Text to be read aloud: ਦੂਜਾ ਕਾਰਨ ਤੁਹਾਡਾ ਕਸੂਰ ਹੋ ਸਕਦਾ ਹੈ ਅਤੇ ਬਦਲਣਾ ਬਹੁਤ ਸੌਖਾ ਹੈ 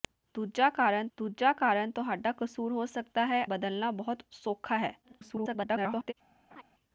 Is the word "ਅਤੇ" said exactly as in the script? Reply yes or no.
no